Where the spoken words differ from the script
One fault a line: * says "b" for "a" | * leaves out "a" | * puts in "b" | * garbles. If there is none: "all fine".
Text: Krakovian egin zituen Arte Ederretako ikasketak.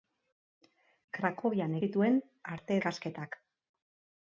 * leaves out "egin"
* leaves out "Ederretako"